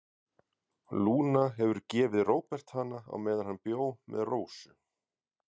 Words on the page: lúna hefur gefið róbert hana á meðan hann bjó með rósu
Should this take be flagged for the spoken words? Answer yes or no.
no